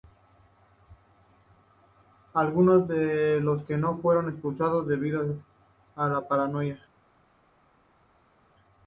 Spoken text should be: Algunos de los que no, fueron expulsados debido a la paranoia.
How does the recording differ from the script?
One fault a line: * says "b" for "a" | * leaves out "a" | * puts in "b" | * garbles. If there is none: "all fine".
all fine